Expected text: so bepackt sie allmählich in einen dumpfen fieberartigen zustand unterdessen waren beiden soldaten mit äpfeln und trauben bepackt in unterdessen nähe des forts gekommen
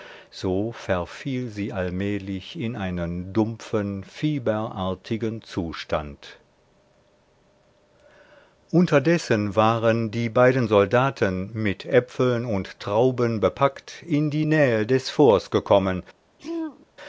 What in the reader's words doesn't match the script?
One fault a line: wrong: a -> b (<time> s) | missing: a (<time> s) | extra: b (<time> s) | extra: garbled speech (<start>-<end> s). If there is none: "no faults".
wrong: bepackt -> verfiel (0.7 s)
extra: die (10.1 s)
wrong: unterdessen -> die (14.3 s)